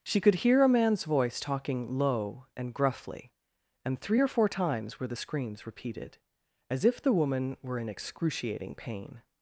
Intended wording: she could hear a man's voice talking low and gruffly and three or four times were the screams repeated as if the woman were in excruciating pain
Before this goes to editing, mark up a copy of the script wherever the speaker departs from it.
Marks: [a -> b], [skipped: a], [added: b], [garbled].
she could hear a man's voice talking low and gruffly and three or four times were the screams repeated as if the woman were in excruciating pain